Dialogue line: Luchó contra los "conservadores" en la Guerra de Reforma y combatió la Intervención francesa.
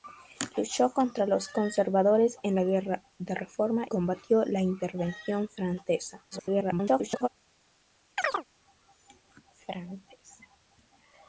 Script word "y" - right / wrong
wrong